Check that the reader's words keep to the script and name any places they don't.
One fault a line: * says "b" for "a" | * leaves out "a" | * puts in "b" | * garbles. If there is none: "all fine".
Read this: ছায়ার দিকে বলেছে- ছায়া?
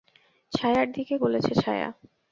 all fine